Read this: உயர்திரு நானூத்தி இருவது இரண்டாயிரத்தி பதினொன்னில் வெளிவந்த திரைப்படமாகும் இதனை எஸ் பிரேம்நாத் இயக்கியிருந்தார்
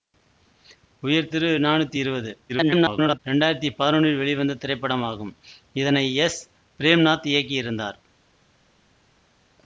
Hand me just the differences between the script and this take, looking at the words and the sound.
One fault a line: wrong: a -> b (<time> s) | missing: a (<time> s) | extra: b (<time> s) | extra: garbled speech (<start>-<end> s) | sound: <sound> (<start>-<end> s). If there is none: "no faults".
extra: garbled speech (2.5-3.2 s)